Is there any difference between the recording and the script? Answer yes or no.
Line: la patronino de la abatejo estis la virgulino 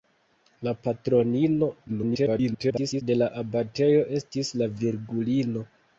yes